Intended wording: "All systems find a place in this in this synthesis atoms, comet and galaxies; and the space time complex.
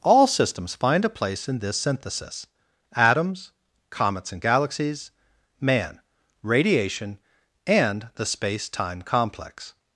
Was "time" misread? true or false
false